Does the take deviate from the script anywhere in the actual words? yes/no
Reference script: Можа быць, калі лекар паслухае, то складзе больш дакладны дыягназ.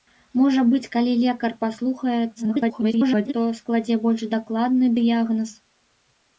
yes